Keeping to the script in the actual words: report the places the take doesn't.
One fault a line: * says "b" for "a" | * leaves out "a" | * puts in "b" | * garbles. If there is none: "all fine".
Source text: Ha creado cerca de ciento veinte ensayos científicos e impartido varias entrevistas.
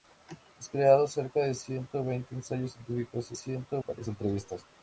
* says "ciento" for "impartido"